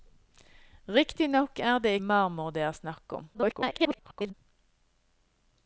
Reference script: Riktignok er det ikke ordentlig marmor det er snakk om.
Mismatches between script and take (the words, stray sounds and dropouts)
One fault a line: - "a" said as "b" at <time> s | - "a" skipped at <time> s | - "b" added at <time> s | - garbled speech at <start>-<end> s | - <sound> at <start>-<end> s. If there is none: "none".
- "ikke ordentlig" skipped at 1.9 s
- garbled speech at 3.3-4.3 s